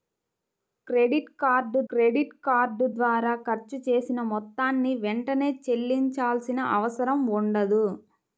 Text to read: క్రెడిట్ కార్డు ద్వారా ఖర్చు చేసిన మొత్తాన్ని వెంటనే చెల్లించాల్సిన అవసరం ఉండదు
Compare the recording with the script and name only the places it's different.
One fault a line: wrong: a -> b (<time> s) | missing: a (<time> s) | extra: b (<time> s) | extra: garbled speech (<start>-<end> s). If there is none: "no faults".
extra: క్రెడిట్ కార్డు (1.9 s)